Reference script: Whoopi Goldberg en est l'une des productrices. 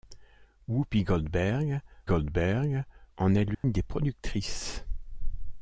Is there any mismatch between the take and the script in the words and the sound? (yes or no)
yes